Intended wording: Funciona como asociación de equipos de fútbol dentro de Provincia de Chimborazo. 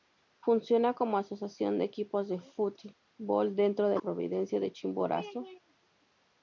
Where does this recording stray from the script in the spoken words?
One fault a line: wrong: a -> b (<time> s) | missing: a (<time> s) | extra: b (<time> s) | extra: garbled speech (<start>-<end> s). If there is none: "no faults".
no faults